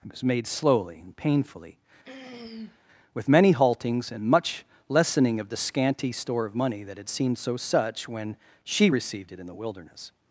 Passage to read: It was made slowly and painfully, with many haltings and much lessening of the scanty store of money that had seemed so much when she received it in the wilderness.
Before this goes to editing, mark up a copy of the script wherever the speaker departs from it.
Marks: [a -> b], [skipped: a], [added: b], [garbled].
It was made slowly and painfully, with many haltings and much lessening of the scanty store of money that had seemed so [much -> such] when she received it in the wilderness.